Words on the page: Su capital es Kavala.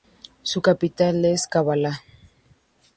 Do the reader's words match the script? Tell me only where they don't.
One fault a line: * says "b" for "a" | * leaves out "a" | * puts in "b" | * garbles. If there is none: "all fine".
all fine